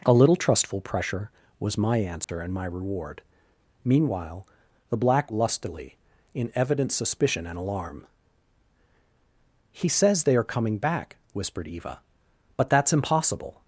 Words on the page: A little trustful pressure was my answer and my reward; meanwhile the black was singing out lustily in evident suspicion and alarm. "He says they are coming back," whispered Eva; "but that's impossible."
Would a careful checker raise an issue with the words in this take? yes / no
yes